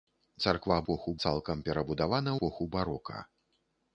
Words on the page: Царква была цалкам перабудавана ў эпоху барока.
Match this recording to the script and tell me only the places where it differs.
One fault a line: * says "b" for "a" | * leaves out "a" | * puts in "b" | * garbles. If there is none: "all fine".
* says "эпоху" for "была"
* leaves out "ў"